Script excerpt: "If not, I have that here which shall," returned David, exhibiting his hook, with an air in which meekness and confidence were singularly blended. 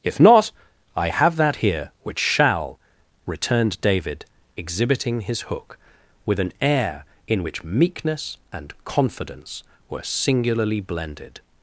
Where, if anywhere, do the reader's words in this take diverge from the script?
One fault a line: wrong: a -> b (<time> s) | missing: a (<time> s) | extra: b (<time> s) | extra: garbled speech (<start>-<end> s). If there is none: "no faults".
no faults